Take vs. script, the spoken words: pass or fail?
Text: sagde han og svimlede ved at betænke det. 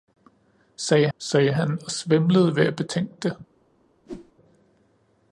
fail